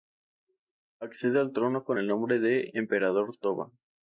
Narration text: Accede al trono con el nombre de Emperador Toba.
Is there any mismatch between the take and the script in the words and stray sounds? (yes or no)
no